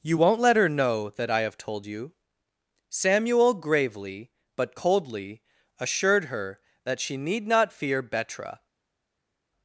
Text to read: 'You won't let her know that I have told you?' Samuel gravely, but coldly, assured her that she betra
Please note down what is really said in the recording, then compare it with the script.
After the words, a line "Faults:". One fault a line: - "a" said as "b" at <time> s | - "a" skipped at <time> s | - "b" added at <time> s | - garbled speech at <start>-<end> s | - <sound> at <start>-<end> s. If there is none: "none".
'You won't let her know that I have told you?' Samuel gravely, but coldly, assured her that she need not fear betra
Faults:
- "need not fear" added at 7.2 s